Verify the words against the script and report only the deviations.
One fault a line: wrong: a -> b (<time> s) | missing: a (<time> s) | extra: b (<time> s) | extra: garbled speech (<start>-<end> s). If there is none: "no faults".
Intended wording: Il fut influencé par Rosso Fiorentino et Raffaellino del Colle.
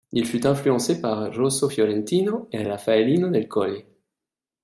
no faults